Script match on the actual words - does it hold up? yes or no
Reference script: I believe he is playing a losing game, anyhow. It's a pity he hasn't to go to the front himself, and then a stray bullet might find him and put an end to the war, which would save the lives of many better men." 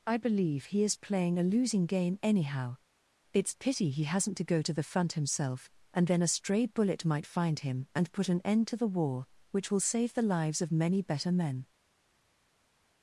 no